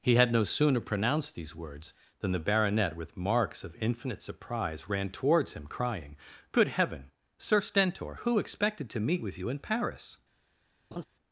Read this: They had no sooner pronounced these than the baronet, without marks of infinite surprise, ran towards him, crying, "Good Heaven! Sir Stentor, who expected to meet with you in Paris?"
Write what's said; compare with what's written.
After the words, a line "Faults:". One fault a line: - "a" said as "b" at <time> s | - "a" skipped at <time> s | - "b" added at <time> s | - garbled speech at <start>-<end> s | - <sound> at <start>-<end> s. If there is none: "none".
He had no sooner pronounced these words, than the baronet, with marks of infinite surprise, ran towards him, crying, "Good Heaven! Sir Stentor, who expected to meet with you in Paris?"
Faults:
- "They" said as "He" at 0.0 s
- "words" added at 1.5 s
- "without" said as "with" at 3.0 s
- laugh at 10.9-11.0 s